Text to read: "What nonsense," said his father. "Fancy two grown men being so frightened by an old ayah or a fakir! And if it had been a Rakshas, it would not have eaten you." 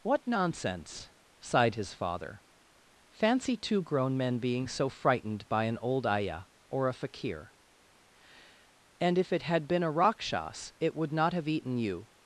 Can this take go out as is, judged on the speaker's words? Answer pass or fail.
fail